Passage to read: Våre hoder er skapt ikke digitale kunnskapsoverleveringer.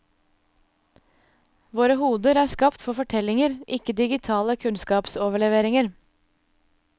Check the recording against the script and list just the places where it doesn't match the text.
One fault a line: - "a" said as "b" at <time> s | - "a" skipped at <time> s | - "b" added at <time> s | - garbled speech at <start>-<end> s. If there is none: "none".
- "for fortellinger" added at 2.9 s